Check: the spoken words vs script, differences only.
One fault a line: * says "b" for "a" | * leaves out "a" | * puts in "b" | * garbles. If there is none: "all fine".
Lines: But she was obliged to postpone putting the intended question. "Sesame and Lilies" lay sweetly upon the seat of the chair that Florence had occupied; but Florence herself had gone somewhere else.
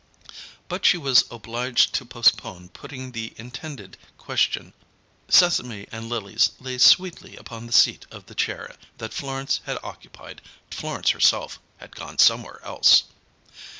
* leaves out "but"